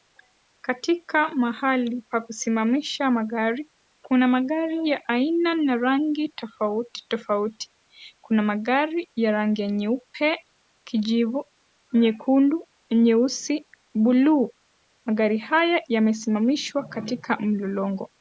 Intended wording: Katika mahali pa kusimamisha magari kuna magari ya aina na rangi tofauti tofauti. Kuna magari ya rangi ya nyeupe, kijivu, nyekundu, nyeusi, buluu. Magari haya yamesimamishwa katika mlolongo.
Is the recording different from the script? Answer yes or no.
no